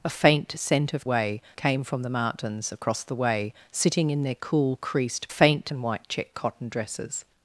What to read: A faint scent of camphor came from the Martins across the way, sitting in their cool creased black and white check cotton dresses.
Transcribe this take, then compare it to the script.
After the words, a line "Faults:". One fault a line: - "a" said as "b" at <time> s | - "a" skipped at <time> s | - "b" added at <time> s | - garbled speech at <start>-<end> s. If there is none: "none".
A faint scent of way came from the Martins across the way, sitting in their cool creased faint and white check cotton dresses.
Faults:
- "camphor" said as "way" at 1.0 s
- "black" said as "faint" at 5.3 s